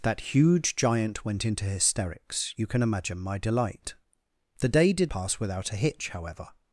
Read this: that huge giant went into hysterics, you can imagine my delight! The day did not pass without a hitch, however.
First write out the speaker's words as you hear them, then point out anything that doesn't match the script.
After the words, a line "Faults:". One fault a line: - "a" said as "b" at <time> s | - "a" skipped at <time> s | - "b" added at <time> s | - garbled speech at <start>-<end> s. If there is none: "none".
that huge giant went into hysterics, you can imagine my delight! The day did pass without a hitch, however.
Faults:
- "not" skipped at 5.1 s